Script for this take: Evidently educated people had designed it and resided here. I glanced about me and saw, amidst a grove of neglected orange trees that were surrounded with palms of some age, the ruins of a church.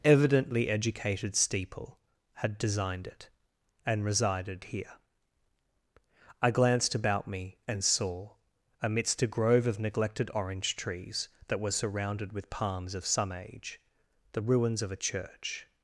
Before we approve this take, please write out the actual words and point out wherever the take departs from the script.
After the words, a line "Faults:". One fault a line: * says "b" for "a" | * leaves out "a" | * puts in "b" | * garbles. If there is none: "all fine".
Evidently educated steeple had designed it and resided here. I glanced about me and saw, amidst a grove of neglected orange trees that were surrounded with palms of some age, the ruins of a church.
Faults:
* says "steeple" for "people"